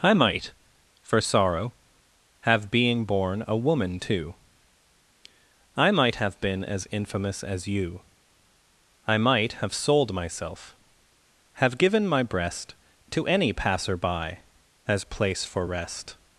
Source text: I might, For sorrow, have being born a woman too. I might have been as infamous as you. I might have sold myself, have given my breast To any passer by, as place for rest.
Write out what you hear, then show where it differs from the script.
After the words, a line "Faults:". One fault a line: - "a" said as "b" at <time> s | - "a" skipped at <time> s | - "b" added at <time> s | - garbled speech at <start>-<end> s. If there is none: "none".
I might, For sorrow, have being born a woman too. I might have been as infamous as you. I might have sold myself, have given my breast To any passer by, as place for rest.
Faults:
none